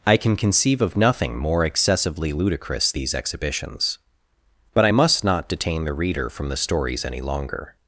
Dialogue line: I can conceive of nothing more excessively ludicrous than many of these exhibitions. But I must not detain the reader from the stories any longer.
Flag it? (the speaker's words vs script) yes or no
yes